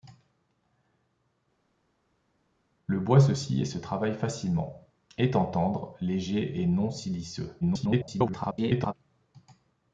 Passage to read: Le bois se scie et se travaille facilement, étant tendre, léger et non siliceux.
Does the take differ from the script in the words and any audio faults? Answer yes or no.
yes